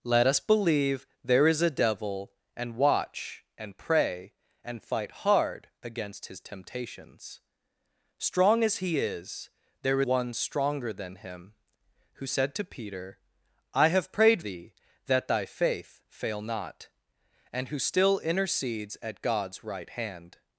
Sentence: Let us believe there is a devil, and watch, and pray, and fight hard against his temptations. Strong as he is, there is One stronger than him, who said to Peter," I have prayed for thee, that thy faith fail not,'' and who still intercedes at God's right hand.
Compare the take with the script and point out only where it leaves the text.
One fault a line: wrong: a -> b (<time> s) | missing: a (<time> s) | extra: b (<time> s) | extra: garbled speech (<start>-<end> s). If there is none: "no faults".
missing: is (10.0 s)
missing: for (14.4 s)